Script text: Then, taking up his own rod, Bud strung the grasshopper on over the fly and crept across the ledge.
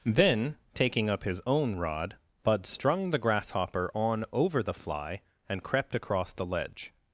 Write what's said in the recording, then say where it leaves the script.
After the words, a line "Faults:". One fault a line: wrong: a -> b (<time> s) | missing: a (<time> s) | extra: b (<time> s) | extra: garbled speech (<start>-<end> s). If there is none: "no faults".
Then, taking up his own rod, Bud strung the grasshopper on over the fly and crept across the ledge.
Faults:
no faults